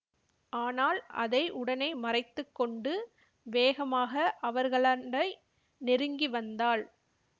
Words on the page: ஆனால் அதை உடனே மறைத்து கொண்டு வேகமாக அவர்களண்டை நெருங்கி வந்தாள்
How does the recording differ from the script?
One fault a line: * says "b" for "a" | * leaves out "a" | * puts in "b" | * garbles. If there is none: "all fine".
all fine